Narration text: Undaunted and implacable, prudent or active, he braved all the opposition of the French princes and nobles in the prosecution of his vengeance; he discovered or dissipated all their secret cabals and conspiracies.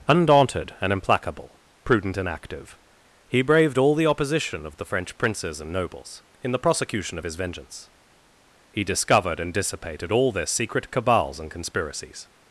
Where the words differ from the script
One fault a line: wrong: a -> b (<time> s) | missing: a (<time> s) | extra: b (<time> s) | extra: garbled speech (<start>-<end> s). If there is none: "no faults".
wrong: or -> and (2.2 s)
wrong: or -> and (9.4 s)